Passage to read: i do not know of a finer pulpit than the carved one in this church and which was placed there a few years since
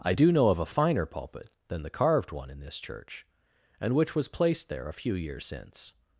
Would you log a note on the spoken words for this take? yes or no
yes